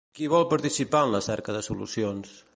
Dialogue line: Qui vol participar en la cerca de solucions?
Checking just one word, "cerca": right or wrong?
right